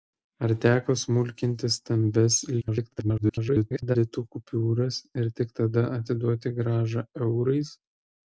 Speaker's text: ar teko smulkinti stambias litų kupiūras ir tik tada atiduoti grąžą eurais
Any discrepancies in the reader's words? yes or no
yes